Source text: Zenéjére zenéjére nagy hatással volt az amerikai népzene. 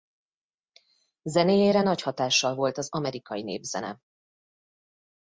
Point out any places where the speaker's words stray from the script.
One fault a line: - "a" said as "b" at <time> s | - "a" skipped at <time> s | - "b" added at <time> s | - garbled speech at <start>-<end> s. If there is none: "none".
- "zenéjére" skipped at 1.8 s